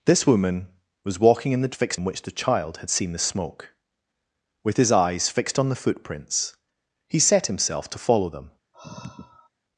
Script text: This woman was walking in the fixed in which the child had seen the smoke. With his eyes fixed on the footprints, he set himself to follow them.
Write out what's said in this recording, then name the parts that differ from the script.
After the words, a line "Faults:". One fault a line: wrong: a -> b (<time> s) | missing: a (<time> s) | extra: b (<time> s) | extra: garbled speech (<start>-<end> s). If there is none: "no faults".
This woman was walking in the fixed in which the child had seen the smoke. With his eyes fixed on the footprints, he set himself to follow them.
Faults:
no faults